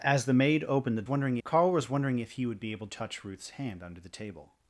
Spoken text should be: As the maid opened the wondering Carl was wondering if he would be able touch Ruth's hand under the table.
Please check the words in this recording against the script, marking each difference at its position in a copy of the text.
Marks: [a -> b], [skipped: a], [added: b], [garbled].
As the maid opened the wondering Carl was wondering if he would be able touch Ruth's hand under the table.